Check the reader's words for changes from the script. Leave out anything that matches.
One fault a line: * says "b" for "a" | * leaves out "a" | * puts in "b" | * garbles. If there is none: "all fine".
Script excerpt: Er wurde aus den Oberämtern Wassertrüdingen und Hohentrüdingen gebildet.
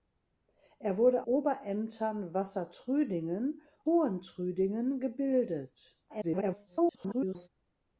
* leaves out "aus den"
* leaves out "und"
* garbles